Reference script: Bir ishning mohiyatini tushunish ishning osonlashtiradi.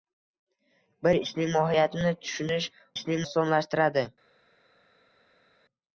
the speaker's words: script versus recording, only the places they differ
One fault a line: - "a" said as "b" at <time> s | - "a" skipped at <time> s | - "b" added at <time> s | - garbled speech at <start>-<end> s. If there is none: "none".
none